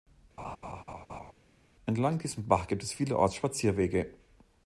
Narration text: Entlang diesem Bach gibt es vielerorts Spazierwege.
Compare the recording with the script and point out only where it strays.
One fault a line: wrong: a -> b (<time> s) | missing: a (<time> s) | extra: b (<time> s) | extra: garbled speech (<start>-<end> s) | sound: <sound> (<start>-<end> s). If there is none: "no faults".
sound: laugh (0.4-1.3 s)